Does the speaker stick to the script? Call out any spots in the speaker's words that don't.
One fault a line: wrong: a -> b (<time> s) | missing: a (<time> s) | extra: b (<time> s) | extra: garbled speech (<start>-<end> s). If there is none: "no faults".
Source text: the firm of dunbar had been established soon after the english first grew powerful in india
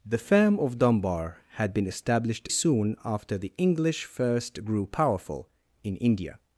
no faults